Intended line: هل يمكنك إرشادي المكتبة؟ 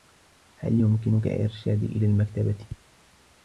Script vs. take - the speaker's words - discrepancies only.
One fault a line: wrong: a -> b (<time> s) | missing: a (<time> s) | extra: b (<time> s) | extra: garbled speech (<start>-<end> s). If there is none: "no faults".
extra: إلى (1.9 s)